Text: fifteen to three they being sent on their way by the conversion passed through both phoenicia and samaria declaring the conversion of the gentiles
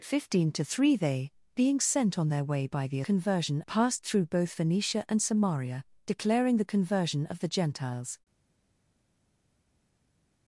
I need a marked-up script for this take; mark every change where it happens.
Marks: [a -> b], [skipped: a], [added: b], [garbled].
fifteen to three they being sent on their way by the conversion passed through both phoenicia and samaria declaring the conversion of the gentiles